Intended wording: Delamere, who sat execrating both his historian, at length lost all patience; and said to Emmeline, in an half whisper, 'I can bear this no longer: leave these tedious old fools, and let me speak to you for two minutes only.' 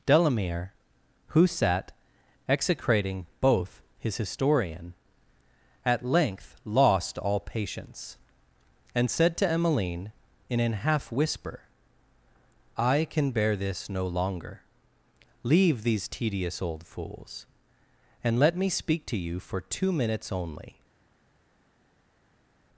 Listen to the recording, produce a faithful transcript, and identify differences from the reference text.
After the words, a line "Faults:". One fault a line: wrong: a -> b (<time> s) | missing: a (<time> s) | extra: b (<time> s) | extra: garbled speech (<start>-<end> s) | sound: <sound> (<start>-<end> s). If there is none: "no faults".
Delamere, who sat execrating both his historian, at length lost all patience; and said to Emmeline, in an half whisper, 'I can bear this no longer: leave these tedious old fools, and let me speak to you for two minutes only.'
Faults:
no faults